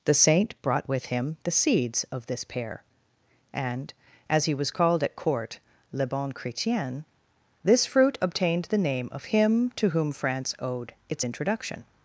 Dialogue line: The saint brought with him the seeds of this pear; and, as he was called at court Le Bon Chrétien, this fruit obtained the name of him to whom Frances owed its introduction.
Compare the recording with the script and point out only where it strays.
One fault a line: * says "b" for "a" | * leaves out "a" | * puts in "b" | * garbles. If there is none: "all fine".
* says "France" for "Frances"